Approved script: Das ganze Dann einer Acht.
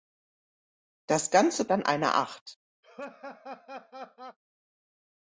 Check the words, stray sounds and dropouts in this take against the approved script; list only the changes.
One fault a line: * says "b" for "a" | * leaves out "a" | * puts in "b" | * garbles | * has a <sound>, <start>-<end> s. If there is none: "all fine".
* has a laugh, 2.8-4.4 s